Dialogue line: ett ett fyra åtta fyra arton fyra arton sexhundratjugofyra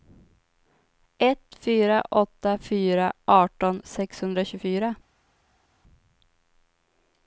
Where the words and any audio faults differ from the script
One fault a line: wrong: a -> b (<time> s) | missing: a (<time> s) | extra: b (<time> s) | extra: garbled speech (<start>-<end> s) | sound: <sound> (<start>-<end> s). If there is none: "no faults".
missing: ett (1.6 s)
missing: fyra arton (3.8 s)